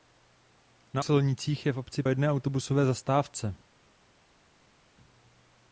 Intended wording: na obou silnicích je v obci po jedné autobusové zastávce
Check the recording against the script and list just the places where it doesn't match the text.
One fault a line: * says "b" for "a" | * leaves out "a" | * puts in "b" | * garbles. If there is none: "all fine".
* leaves out "obou"
* leaves out "po"